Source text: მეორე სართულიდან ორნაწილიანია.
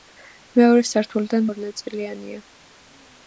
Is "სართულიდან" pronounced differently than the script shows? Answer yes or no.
no